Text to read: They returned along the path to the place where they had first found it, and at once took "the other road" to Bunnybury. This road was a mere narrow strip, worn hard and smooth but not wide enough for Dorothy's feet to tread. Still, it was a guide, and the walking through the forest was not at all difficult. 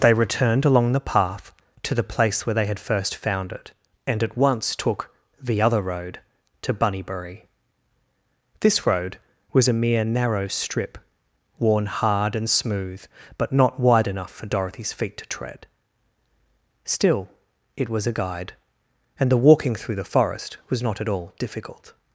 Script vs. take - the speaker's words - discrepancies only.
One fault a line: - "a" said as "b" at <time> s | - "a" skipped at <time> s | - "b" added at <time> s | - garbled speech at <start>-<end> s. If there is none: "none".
none